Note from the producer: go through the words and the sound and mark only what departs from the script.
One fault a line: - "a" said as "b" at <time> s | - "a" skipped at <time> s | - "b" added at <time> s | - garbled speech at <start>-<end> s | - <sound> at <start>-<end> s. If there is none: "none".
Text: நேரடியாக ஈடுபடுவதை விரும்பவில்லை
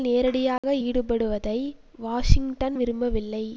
- dropout at 0.6-0.6 s
- "வாஷிங்டன்" added at 2.0 s